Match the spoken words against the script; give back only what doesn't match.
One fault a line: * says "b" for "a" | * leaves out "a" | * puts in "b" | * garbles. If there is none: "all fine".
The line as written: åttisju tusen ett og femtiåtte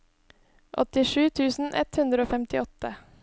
* puts in "hundre"